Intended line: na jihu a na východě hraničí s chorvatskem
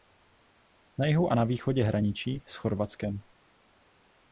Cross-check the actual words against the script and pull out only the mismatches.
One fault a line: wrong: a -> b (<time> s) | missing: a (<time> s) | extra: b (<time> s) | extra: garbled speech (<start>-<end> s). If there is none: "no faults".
no faults